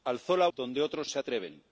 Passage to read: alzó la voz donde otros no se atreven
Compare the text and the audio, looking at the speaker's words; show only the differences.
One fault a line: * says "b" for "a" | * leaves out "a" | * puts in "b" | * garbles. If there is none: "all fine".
* leaves out "voz"
* leaves out "no"